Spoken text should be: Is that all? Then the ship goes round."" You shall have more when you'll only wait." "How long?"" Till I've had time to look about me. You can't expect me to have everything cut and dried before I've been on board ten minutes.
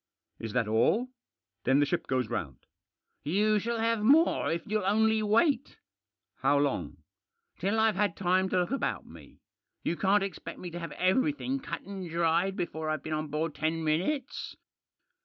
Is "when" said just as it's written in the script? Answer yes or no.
no